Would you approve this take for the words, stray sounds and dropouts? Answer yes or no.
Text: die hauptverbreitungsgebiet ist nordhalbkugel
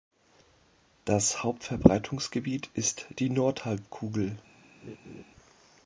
no